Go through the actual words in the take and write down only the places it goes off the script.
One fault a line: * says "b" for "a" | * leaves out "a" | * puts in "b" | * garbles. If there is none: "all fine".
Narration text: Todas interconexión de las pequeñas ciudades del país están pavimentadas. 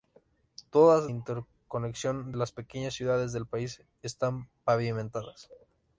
all fine